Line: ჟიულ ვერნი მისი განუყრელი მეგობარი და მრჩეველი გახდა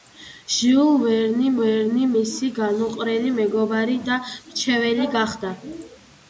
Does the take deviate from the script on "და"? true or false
false